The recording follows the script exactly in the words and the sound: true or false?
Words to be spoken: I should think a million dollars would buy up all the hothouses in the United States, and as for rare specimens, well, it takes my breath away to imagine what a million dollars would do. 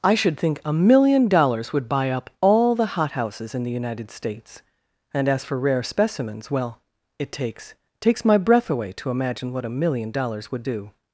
false